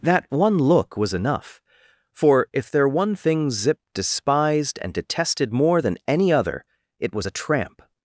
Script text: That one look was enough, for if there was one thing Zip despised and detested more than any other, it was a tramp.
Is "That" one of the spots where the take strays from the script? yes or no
no